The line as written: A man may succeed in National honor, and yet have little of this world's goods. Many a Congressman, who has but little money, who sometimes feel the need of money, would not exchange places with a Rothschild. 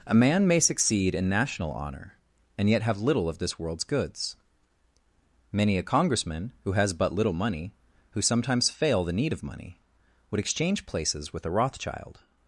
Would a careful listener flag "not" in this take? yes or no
yes